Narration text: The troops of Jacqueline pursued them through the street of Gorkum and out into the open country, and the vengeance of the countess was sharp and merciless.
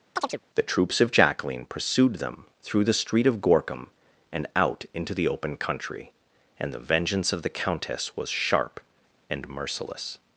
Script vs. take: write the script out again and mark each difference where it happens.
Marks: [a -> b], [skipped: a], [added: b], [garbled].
The troops of Jacqueline pursued them through the street of Gorkum and out into the open country, and the vengeance of the countess was sharp and merciless.